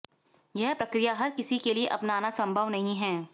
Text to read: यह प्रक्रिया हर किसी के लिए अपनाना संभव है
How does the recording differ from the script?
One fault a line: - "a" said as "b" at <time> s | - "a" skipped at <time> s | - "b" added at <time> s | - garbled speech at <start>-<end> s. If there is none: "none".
- "नहीं" added at 2.7 s